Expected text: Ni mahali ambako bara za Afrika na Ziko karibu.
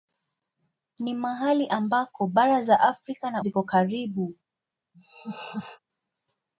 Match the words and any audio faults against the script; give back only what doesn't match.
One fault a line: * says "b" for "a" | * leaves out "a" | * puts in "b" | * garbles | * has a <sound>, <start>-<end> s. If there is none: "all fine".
* has a laugh, 4.9-5.8 s